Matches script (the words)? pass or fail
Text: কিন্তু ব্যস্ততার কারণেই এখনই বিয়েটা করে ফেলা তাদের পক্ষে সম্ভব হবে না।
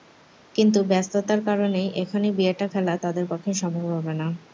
fail